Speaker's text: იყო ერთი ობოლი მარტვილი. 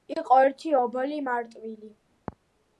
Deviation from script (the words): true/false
false